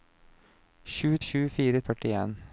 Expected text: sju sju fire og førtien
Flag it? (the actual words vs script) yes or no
no